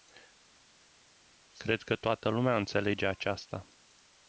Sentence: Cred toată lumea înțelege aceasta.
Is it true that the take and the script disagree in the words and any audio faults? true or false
true